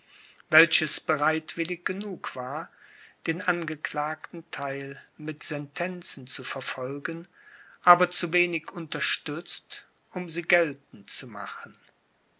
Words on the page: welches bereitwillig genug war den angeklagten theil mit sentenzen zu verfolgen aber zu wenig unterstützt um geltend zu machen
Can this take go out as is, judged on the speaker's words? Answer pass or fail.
fail